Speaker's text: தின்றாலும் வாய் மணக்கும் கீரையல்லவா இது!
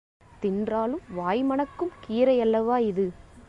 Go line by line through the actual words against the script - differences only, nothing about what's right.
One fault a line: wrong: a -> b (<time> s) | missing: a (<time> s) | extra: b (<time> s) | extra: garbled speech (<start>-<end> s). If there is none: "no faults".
no faults